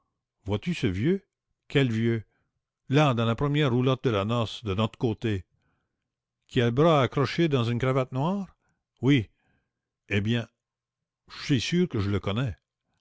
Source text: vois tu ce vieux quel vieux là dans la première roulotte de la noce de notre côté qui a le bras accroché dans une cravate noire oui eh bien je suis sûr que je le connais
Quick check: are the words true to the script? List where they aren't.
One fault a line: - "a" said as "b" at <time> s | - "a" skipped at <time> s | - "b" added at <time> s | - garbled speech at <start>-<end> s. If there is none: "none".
none